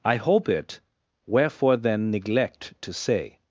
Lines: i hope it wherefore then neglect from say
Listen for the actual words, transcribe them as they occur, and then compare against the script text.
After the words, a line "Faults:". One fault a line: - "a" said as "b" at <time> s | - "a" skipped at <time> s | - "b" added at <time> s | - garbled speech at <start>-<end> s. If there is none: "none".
i hope it wherefore then neglect to say
Faults:
- "from" said as "to" at 2.8 s